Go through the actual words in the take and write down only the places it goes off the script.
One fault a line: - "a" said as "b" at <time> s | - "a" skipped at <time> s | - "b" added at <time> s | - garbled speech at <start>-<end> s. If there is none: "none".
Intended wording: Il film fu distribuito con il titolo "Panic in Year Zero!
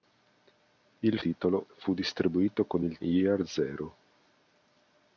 - "film" said as "titolo" at 1.2 s
- "titolo Panic in" skipped at 3.0 s